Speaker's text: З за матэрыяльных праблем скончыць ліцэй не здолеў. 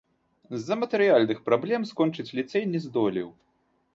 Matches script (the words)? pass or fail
pass